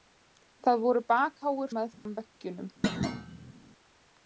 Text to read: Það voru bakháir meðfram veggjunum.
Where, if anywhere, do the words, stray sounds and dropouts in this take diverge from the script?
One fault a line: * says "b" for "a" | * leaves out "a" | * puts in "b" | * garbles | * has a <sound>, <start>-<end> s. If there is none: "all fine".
* has a dropout, 1.9-2.1 s
* has a thud, 2.8-3.5 s